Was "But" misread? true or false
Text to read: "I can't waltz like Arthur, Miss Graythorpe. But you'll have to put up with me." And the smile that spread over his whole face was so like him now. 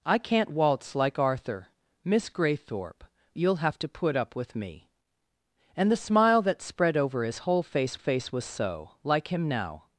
true